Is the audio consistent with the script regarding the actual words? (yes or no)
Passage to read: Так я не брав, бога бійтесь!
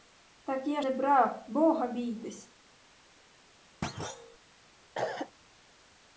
yes